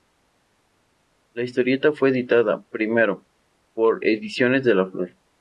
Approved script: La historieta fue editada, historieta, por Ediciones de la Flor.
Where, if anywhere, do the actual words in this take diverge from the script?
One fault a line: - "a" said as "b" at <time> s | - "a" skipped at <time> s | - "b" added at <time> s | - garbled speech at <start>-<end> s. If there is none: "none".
- "historieta" said as "primero" at 2.7 s